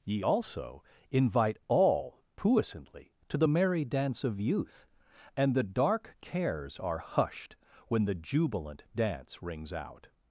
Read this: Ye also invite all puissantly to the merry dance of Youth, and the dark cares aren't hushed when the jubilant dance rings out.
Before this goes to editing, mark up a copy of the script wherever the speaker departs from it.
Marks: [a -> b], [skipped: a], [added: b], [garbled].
Ye also invite all puissantly to the merry dance of Youth, and the dark cares [aren't -> are] hushed when the jubilant dance rings out.